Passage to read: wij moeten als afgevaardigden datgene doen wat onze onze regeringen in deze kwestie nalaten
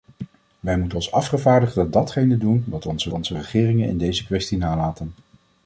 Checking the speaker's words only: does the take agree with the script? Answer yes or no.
yes